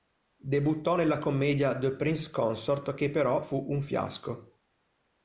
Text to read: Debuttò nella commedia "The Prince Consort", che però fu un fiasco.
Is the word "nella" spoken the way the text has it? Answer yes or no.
yes